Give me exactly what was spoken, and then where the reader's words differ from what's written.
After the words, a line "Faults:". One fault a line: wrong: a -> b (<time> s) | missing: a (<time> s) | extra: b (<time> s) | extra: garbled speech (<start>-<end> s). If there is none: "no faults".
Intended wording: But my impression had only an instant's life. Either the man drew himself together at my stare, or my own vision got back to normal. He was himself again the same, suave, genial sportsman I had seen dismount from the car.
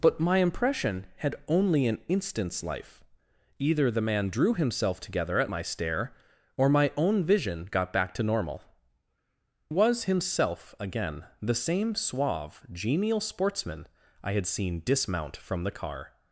But my impression had only an instant's life. Either the man drew himself together at my stare, or my own vision got back to normal. Was himself again the same, suave, genial sportsman I had seen dismount from the car.
Faults:
missing: He (8.6 s)